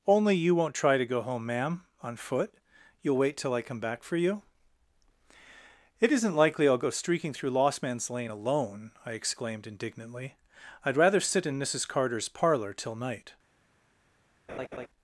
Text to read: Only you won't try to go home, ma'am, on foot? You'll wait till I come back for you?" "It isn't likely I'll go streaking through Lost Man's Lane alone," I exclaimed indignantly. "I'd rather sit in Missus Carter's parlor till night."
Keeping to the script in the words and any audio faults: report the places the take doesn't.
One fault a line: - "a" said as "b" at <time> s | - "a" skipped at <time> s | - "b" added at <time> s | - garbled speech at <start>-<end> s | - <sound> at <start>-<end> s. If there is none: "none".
- laugh at 14.5-14.9 s